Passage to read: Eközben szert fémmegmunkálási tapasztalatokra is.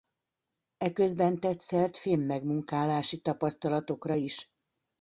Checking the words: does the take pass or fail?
fail